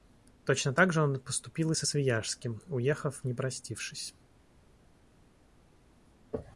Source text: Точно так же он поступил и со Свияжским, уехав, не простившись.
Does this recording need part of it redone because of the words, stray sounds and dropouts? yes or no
no